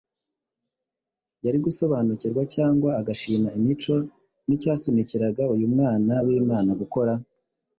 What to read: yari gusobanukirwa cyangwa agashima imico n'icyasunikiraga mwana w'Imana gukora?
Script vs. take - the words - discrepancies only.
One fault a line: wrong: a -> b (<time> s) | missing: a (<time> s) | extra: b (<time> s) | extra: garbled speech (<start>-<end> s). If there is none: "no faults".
extra: uyu (5.5 s)